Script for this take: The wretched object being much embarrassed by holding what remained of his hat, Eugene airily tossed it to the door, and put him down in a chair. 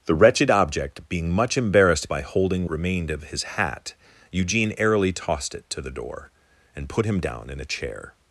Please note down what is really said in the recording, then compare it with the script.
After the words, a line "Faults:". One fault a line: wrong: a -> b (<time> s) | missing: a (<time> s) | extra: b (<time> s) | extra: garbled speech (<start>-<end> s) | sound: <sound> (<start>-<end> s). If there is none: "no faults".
The wretched object being much embarrassed by holding remained of his hat, Eugene airily tossed it to the door, and put him down in a chair.
Faults:
missing: what (2.7 s)